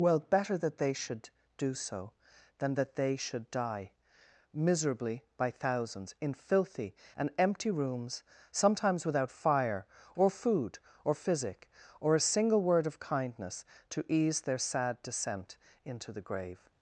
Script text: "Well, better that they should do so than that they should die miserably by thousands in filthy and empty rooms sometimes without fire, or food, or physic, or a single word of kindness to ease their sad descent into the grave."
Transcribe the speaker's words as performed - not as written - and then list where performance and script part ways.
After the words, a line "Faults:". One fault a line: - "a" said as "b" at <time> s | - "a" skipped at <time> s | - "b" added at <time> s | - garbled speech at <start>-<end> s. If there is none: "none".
"Well, better that they should do so than that they should die miserably by thousands in filthy and empty rooms sometimes without fire, or food, or physic, or a single word of kindness to ease their sad descent into the grave."
Faults:
none